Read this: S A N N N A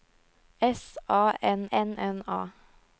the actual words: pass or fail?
pass